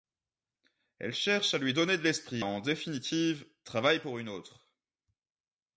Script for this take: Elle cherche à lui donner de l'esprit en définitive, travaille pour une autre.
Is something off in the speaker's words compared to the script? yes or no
no